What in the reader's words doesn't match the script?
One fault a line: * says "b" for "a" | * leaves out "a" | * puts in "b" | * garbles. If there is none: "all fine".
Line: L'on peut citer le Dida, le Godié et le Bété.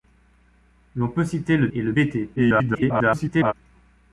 * leaves out "Dida le Godié"
* garbles